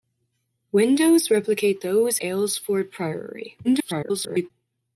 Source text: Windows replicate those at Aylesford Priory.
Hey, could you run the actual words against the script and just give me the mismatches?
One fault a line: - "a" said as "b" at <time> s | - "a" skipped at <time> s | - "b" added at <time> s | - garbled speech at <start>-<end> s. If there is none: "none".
- "at" skipped at 2.2 s
- garbled speech at 3.6-4.5 s